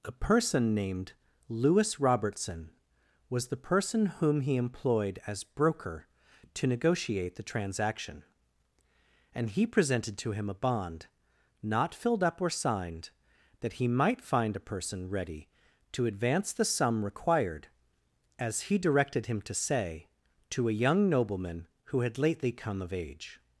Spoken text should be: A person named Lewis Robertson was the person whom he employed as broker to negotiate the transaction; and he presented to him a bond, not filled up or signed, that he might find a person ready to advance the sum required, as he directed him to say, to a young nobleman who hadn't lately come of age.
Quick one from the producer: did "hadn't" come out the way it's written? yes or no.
no